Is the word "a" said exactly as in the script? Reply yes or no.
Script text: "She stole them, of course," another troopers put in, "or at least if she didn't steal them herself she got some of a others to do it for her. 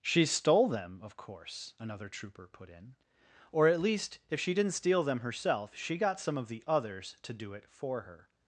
no